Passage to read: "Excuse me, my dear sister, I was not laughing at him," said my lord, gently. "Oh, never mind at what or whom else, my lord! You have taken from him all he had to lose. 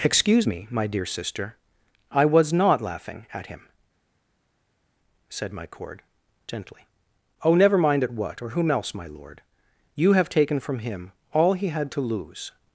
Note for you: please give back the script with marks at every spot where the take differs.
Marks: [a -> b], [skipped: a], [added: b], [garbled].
"Excuse me, my dear sister, I was not laughing at him," said my [lord, -> cord] gently. "Oh, never mind at what or whom else, my lord! You have taken from him all he had to lose.